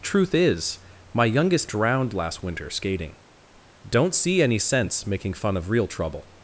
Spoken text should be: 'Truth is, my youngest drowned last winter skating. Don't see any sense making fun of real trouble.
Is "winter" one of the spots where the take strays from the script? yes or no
no